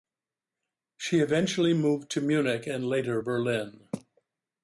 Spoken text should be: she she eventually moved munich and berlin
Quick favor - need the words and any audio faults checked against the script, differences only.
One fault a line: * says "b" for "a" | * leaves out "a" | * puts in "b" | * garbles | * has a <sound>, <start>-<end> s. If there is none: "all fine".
* leaves out "she"
* puts in "to"
* puts in "later"